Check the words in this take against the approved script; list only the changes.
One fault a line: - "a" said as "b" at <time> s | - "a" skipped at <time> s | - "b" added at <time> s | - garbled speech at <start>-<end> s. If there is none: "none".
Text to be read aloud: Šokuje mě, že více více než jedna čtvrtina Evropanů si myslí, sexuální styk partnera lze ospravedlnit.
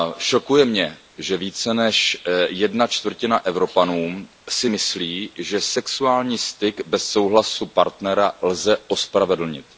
- "více" skipped at 1.7 s
- "že" added at 5.4 s
- "bez souhlasu" added at 6.9 s